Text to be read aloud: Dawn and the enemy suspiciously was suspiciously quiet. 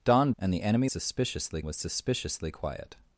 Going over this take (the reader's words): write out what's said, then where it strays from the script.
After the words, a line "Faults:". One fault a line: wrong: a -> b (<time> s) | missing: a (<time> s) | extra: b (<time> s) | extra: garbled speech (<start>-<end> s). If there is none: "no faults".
Dawn and the enemy suspiciously was suspiciously quiet.
Faults:
no faults